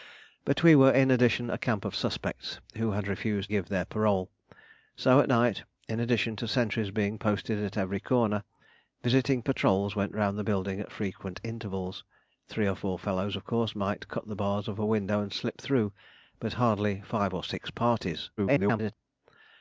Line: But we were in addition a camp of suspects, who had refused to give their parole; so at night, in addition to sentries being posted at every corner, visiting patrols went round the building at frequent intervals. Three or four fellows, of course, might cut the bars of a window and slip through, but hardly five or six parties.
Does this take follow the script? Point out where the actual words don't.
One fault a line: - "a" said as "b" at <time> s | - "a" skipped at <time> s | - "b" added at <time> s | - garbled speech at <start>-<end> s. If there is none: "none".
- "to" skipped at 3.5 s
- garbled speech at 18.4-18.9 s